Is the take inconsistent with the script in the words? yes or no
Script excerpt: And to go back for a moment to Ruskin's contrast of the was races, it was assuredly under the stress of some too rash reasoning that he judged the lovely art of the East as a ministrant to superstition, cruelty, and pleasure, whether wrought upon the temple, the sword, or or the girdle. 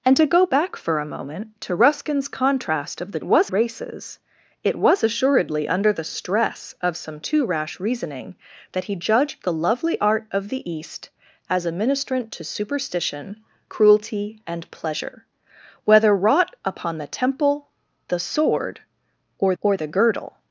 no